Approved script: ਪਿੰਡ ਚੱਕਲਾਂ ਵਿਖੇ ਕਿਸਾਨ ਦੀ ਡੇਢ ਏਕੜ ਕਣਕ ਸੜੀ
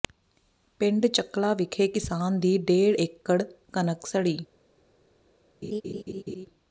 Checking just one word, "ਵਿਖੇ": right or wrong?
right